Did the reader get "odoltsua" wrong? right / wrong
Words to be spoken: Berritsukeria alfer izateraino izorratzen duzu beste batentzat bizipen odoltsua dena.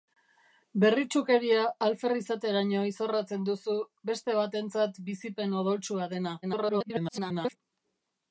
right